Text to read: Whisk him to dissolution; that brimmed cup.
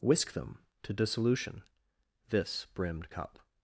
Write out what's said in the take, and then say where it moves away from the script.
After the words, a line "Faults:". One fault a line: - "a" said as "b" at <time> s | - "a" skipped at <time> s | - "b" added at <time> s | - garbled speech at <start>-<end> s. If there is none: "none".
Whisk them to dissolution; this brimmed cup.
Faults:
- "him" said as "them" at 0.3 s
- "that" said as "this" at 2.3 s